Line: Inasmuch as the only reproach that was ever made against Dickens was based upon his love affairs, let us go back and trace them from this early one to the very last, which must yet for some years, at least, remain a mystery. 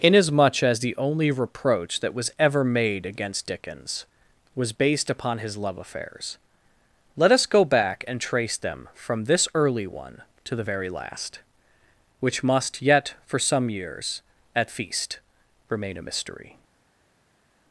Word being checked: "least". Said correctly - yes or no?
no